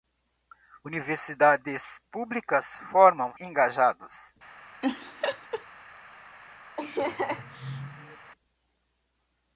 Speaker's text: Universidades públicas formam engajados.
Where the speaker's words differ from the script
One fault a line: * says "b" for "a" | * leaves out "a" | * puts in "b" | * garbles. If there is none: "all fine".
all fine